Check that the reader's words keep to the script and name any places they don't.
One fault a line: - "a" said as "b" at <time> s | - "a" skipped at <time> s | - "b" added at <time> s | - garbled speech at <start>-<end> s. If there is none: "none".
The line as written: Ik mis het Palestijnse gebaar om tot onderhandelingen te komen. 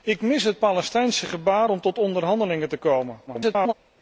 - garbled speech at 3.3-3.7 s